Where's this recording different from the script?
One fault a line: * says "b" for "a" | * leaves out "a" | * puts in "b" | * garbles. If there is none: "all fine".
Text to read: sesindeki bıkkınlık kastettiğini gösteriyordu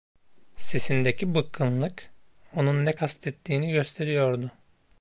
* puts in "onun ne"